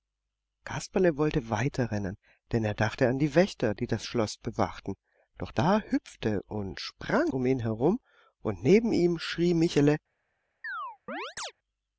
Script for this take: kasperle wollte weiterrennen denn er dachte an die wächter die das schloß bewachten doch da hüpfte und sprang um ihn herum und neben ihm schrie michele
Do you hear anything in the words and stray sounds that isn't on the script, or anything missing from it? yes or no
yes